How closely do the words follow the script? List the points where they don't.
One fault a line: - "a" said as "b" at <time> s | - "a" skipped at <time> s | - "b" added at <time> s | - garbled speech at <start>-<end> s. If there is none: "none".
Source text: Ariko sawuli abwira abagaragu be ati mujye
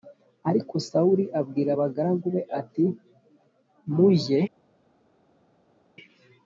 none